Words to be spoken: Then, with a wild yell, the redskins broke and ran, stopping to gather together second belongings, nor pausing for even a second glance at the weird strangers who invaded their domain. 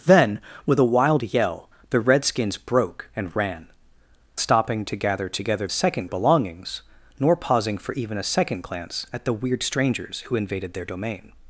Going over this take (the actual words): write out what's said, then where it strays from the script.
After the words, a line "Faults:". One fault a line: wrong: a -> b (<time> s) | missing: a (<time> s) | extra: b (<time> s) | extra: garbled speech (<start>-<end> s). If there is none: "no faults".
Then, with a wild yell, the redskins broke and ran, stopping to gather together second belongings, nor pausing for even a second glance at the weird strangers who invaded their domain.
Faults:
no faults